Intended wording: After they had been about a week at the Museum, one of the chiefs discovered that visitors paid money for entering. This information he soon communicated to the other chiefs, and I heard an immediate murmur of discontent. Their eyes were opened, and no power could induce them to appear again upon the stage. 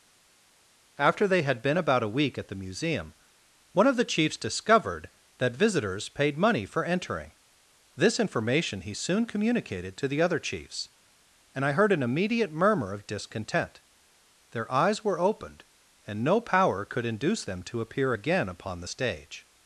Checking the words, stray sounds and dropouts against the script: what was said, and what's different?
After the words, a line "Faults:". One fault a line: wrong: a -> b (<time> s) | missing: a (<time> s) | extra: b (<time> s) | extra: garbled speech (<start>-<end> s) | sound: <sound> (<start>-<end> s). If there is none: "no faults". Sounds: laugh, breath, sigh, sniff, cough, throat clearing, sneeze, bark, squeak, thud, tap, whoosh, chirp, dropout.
After they had been about a week at the Museum, one of the chiefs discovered that visitors paid money for entering. This information he soon communicated to the other chiefs, and I heard an immediate murmur of discontent. Their eyes were opened, and no power could induce them to appear again upon the stage.
Faults:
no faults